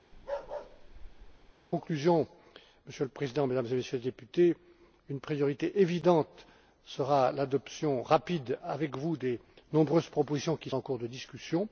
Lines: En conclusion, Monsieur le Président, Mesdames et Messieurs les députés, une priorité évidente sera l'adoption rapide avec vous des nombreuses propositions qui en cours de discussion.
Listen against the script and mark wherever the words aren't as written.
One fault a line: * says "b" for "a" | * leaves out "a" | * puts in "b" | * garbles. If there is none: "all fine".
all fine